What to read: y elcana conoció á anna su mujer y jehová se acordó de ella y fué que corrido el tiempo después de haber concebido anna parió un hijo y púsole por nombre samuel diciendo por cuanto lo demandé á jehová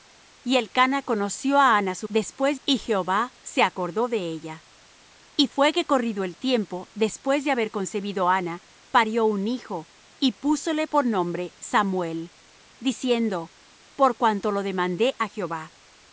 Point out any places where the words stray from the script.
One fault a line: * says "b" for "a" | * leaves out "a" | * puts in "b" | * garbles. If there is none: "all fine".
* says "después" for "mujer"